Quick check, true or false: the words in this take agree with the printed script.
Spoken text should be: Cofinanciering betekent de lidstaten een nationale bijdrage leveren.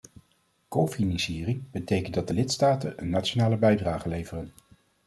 false